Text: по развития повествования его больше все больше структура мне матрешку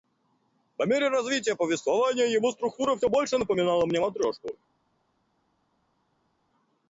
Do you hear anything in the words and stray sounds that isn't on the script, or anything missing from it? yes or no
yes